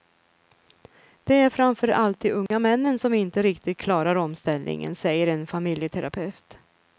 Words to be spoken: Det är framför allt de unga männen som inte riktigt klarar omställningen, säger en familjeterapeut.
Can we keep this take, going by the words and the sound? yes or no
no